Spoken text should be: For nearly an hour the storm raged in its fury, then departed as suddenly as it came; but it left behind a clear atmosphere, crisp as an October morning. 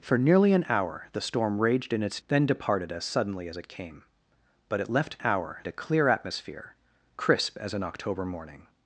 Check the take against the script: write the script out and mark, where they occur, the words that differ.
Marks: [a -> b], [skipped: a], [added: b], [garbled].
For nearly an hour the storm raged in its [skipped: fury,] then departed as suddenly as it came; but it left [behind -> hour] a clear atmosphere, crisp as an October morning.